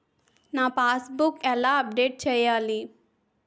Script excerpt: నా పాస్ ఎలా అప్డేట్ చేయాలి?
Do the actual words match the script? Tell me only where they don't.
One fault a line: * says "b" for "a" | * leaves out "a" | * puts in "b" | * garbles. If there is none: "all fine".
* puts in "బుక్"